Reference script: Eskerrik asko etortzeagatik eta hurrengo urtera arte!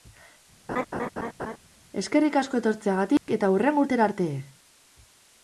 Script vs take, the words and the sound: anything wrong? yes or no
yes